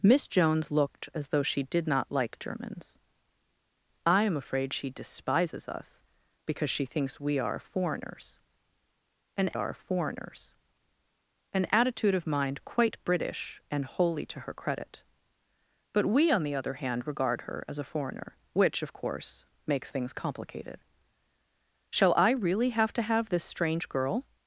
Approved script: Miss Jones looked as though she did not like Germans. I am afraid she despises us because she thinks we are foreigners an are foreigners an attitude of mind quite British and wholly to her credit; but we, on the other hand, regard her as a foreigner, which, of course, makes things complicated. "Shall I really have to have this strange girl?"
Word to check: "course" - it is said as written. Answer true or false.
true